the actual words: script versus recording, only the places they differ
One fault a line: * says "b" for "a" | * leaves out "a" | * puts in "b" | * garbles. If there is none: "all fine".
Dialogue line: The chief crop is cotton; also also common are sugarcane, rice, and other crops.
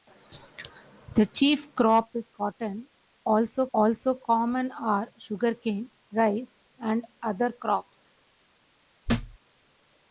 all fine